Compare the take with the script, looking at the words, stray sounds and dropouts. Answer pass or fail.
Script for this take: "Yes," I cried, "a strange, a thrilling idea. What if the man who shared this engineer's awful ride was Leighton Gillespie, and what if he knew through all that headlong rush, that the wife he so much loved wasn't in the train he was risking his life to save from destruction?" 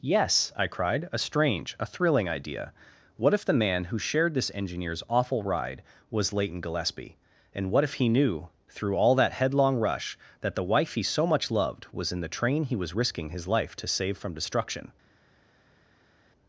fail